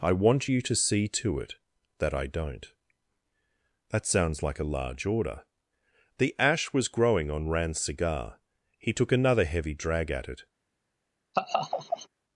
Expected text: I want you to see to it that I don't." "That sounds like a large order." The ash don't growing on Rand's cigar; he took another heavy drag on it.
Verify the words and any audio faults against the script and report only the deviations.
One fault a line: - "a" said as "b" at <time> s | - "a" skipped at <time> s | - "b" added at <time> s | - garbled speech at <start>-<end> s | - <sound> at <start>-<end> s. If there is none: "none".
- "don't" said as "was" at 6.7 s
- "on" said as "at" at 10.1 s
- laugh at 11.3-12.1 s